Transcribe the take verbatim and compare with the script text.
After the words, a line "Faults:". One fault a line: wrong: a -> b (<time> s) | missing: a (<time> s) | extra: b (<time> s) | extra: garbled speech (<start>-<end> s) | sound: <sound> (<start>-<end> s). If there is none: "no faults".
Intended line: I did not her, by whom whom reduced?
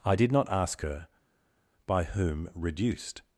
I did not ask her, by whom reduced?
Faults:
extra: ask (0.5 s)
missing: whom (2.5 s)